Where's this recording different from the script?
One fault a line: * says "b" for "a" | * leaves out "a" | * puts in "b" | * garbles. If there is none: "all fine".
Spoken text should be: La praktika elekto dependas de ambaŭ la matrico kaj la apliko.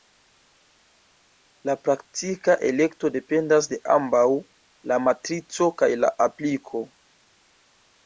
all fine